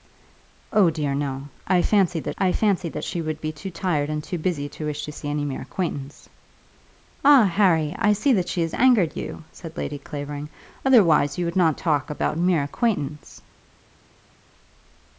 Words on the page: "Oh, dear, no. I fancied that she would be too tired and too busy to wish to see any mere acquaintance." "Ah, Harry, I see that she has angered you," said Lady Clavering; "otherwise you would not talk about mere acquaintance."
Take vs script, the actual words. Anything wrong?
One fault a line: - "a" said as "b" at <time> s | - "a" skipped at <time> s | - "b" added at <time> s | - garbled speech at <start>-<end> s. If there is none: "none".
- "I fancied that" added at 2.4 s